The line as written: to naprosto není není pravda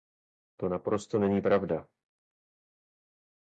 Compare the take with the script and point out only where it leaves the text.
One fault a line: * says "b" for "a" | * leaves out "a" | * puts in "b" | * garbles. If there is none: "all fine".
* leaves out "není"